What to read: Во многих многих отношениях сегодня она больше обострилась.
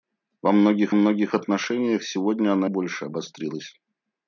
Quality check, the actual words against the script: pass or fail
pass